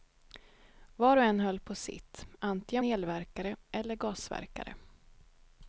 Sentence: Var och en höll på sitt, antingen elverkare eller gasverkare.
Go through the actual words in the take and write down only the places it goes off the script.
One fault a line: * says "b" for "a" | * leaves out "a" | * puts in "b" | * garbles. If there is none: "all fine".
all fine